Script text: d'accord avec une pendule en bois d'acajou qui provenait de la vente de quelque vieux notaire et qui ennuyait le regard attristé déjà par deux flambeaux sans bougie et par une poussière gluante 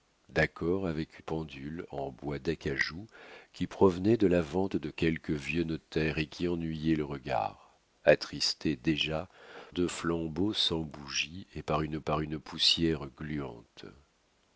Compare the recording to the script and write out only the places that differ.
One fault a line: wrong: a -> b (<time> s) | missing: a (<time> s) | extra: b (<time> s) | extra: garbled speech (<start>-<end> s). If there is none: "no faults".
missing: une (1.2 s)
missing: par (9.3 s)
extra: par une (12.0 s)